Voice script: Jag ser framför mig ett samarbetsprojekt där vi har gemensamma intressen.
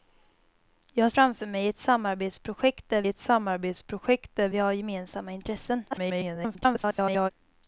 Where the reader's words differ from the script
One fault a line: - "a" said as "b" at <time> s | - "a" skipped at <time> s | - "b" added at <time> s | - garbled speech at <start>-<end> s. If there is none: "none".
- "ser" skipped at 1.1 s
- "ett samarbetsprojekt där" added at 3.1 s
- garbled speech at 5.9-7.3 s